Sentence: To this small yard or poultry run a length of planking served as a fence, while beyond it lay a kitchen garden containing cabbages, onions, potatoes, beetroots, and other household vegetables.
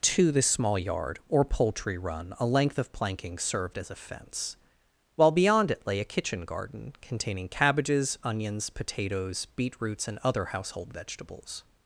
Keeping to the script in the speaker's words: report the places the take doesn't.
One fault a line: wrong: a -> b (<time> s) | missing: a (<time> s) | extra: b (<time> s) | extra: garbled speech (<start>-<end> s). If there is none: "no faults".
no faults